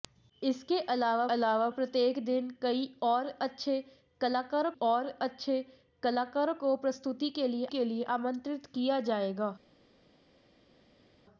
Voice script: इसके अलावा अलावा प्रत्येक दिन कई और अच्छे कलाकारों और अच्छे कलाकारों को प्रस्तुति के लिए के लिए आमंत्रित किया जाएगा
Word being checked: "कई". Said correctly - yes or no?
yes